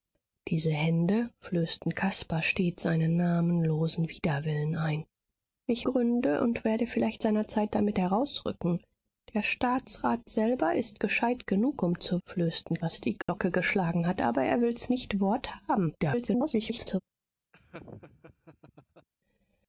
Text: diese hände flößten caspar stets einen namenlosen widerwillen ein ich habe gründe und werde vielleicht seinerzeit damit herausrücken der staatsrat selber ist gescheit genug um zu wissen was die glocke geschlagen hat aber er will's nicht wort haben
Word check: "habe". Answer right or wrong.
wrong